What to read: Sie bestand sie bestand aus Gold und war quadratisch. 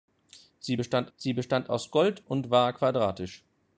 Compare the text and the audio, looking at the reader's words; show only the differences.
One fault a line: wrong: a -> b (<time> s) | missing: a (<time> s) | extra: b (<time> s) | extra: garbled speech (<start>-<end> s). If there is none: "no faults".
no faults